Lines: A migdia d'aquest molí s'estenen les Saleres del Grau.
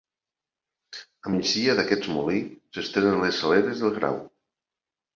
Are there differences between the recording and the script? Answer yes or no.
no